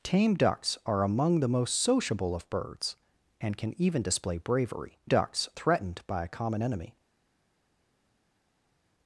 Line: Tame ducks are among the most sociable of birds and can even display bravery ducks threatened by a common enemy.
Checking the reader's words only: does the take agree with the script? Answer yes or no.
yes